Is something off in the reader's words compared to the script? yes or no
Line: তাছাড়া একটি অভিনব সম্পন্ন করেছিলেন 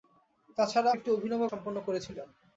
no